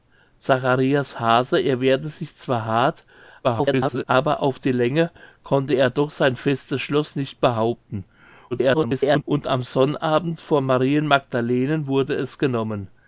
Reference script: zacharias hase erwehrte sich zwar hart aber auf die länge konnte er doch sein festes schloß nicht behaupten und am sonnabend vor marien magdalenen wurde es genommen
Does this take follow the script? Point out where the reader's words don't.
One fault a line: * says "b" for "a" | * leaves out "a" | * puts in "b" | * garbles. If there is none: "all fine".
* garbles
* garbles